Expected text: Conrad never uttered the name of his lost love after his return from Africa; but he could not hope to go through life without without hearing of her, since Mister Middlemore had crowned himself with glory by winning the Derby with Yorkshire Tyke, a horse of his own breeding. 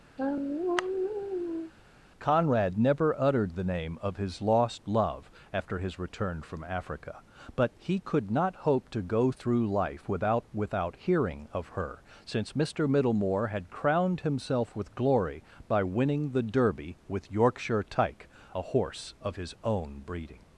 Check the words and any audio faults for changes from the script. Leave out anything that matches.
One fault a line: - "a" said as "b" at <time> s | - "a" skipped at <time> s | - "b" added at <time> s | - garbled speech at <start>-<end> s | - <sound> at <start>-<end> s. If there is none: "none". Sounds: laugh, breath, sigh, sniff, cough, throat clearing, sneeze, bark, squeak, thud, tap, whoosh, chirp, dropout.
- sigh at 0.2-1.7 s